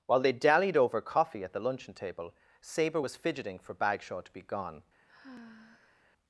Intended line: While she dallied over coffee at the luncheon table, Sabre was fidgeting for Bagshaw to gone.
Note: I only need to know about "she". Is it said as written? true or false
false